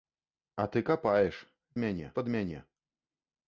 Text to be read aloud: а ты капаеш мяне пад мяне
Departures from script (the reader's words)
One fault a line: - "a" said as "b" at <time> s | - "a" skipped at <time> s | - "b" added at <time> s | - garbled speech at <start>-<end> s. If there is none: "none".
none